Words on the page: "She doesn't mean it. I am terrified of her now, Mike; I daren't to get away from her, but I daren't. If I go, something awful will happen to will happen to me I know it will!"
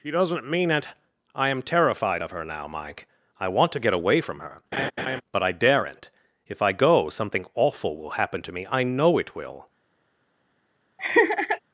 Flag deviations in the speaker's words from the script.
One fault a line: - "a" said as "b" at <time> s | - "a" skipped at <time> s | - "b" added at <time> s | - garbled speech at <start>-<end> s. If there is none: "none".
- "daren't" said as "want" at 3.5 s
- "will happen to" skipped at 8.5 s